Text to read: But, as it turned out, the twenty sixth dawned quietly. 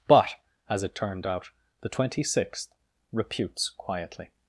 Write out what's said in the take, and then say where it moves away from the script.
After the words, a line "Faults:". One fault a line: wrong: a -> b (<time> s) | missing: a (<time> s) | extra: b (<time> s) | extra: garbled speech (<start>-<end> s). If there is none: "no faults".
But, as it turned out, the twenty sixth reputes quietly.
Faults:
wrong: dawned -> reputes (3.1 s)